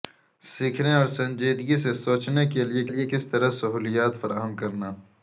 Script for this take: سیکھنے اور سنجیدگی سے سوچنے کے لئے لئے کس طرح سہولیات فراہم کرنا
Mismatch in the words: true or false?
false